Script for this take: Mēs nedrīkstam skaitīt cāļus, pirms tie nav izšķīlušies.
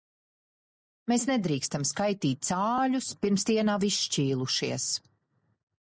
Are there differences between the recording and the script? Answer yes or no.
no